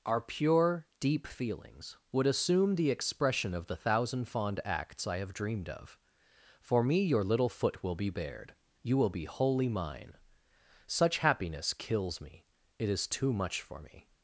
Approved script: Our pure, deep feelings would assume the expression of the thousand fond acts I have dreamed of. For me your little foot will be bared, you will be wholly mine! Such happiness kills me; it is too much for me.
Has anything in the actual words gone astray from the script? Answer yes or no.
no